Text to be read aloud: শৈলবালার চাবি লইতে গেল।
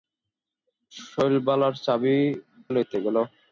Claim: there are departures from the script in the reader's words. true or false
false